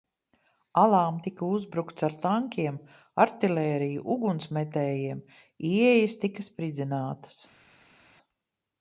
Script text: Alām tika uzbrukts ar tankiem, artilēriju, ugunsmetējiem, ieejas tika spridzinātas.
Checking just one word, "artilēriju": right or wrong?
right